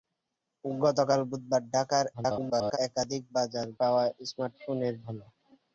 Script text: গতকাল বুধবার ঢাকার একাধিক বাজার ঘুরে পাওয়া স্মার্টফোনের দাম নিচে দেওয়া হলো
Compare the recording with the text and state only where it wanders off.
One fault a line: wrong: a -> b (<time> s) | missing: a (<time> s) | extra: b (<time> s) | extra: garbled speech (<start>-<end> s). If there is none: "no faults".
extra: garbled speech (2.1-2.8 s)
missing: ঘুরে (3.7 s)
missing: দাম নিচে দেওয়া (4.9 s)